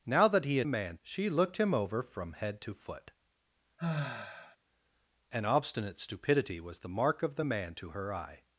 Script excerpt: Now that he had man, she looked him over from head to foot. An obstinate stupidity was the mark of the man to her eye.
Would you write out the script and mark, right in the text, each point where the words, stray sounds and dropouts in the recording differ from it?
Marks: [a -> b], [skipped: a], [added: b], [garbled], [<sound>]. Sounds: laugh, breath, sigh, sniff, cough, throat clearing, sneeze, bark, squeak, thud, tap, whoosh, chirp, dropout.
Now that he had man, she looked him over from head to foot. [sigh] An obstinate stupidity was the mark of the man to her eye.